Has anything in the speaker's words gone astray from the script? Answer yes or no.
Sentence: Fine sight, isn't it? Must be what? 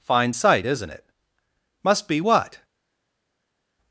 no